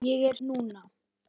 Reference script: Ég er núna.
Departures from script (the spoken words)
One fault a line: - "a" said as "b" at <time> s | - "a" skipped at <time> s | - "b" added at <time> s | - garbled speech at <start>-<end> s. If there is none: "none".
none